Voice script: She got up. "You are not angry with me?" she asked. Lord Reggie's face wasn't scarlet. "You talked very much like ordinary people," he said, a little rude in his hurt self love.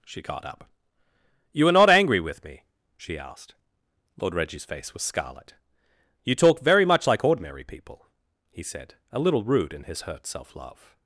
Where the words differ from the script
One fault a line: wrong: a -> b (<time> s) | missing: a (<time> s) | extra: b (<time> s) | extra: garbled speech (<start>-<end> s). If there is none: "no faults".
wrong: wasn't -> was (4.9 s)
wrong: talked -> talk (6.3 s)